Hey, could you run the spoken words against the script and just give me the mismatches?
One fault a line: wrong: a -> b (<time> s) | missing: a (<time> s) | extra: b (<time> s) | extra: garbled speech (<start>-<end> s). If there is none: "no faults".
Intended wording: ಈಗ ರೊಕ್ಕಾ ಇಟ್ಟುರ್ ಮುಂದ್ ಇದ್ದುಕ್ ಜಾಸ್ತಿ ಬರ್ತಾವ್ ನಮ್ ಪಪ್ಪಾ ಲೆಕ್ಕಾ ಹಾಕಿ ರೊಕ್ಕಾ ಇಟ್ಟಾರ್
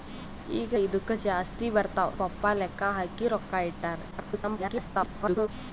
missing: ರೊಕ್ಕಾ ಇಟ್ಟುರ್ ಮುಂದ್ (0.7 s)
missing: ನಮ್ (2.1 s)
extra: garbled speech (4.1-5.5 s)